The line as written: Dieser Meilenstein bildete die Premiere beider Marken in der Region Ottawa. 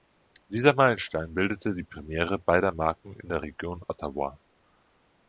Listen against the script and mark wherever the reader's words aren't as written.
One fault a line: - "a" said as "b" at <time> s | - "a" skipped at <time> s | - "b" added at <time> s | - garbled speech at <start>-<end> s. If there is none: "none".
none